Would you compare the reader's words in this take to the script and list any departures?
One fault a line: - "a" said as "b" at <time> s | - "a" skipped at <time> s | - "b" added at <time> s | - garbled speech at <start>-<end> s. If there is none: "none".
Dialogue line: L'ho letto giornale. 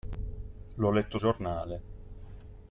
none